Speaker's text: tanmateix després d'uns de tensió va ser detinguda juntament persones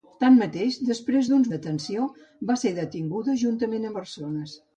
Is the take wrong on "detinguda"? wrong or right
right